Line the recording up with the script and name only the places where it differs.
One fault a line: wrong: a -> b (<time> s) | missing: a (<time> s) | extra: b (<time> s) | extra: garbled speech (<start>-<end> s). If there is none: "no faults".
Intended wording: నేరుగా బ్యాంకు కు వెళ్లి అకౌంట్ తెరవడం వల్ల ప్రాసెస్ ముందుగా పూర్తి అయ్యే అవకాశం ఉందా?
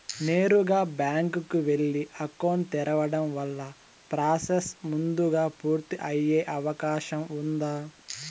no faults